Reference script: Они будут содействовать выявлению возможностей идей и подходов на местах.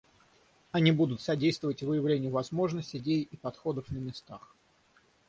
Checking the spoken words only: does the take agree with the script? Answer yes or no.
yes